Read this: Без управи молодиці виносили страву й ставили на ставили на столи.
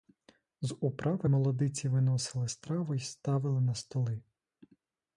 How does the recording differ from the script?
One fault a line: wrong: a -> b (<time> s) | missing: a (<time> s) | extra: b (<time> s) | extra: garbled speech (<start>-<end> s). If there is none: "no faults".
wrong: Без -> З (0.6 s)
missing: ставили на (3.7 s)